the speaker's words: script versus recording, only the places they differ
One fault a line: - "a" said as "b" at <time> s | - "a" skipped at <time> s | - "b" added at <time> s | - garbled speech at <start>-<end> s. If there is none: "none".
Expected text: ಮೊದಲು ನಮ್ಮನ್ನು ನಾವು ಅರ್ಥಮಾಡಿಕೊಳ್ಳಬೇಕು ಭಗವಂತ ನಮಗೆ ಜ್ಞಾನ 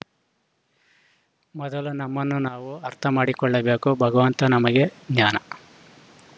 none